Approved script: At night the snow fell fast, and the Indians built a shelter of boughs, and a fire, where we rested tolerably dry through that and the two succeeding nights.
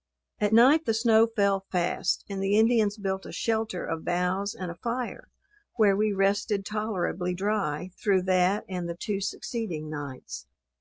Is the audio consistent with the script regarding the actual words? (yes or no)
yes